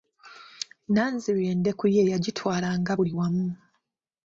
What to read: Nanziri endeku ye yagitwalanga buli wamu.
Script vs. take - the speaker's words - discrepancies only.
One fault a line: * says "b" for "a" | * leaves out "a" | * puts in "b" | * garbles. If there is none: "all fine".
all fine